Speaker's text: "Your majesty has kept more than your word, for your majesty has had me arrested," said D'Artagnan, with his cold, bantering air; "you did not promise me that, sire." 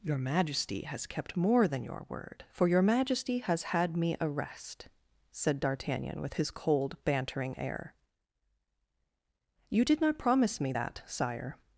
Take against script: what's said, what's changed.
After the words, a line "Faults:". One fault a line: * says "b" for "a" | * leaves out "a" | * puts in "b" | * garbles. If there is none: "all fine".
"Your majesty has kept more than your word, for your majesty has had me arrest," said D'Artagnan, with his cold, bantering air; "you did not promise me that, sire."
Faults:
* says "arrest" for "arrested"